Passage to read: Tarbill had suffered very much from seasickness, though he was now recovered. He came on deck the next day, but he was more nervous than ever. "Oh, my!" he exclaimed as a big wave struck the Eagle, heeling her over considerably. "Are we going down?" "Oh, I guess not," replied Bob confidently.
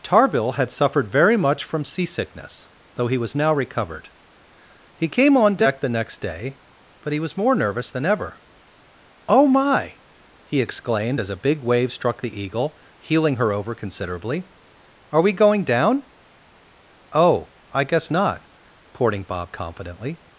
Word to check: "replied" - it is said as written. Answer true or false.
false